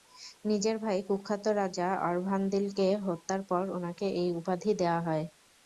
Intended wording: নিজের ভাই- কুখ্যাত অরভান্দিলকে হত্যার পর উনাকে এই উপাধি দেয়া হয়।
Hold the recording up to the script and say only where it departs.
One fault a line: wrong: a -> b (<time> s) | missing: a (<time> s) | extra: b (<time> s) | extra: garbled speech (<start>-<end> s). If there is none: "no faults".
extra: রাজা (1.6 s)